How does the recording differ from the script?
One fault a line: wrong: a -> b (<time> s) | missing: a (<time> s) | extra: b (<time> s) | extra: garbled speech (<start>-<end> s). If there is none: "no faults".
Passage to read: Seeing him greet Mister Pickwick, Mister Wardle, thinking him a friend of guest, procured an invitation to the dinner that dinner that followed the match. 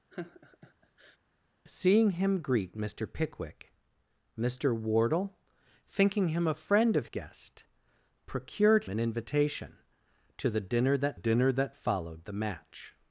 no faults